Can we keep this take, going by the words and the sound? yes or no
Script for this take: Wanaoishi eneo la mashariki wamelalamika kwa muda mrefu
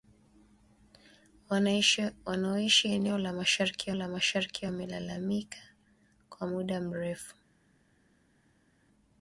no